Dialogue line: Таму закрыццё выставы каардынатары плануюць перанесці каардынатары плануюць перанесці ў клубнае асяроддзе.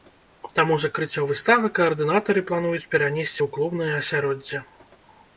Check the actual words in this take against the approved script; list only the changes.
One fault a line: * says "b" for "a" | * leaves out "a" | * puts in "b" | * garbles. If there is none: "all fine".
* leaves out "каардынатары плануюць перанесці"